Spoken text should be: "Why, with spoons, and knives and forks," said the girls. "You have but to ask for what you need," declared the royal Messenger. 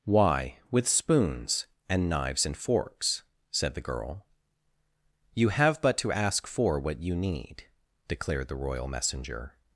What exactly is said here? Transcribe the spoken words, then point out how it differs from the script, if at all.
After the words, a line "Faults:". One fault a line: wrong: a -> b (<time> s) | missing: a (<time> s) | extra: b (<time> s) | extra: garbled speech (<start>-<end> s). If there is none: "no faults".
"Why, with spoons, and knives and forks," said the girl. "You have but to ask for what you need," declared the royal Messenger.
Faults:
wrong: girls -> girl (3.9 s)